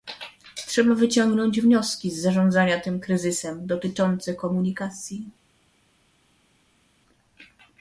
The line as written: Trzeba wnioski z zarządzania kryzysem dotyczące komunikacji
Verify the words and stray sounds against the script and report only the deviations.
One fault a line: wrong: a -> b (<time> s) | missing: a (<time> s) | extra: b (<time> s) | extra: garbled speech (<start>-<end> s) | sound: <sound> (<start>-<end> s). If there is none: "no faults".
extra: wyciągnąć (0.9 s)
extra: tym (2.8 s)